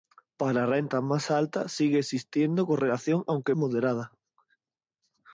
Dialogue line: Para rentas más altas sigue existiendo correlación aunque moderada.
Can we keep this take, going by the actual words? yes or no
yes